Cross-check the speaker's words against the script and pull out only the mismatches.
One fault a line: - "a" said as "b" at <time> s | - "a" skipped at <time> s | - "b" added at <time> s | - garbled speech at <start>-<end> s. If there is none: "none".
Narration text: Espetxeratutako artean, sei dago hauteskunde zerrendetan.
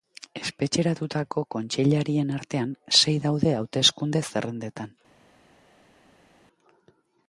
- "kontseilarien" added at 1.6 s
- "dago" said as "daude" at 3.3 s